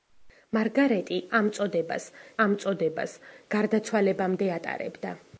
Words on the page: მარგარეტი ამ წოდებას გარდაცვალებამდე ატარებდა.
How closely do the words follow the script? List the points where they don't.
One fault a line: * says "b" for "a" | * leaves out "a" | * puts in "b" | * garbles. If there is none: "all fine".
* puts in "ამ წოდებას"